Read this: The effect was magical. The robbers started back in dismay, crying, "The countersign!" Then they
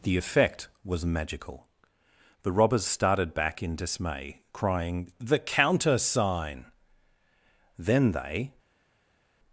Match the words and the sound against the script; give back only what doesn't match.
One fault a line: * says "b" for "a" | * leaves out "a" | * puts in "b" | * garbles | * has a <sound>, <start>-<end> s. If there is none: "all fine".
all fine